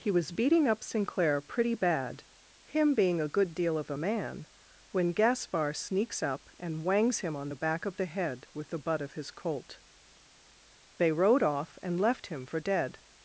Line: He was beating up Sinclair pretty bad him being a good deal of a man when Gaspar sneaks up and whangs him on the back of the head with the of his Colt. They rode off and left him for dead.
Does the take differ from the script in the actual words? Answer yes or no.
yes